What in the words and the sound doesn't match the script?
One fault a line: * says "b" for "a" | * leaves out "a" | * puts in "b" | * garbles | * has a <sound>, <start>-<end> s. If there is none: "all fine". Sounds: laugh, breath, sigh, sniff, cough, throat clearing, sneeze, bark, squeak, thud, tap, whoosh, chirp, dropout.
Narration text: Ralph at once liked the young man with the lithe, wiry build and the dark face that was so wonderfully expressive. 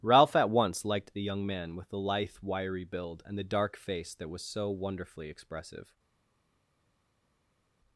all fine